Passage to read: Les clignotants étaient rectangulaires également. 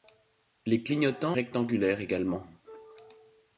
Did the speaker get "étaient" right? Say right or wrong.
wrong